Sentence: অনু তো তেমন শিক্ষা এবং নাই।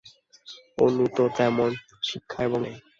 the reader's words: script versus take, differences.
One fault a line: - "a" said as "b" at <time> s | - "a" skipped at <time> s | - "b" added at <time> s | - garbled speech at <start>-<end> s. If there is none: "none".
none